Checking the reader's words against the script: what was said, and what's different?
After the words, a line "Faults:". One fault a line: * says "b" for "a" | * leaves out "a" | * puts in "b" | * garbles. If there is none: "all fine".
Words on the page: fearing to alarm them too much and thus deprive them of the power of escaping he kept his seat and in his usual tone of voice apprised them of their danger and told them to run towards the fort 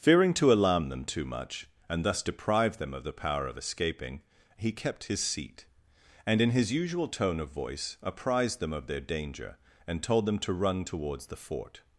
fearing to alarm them too much and thus deprive them of the power of escaping he kept his seat and in his usual tone of voice apprised them of their danger and told them to run towards the fort
Faults:
all fine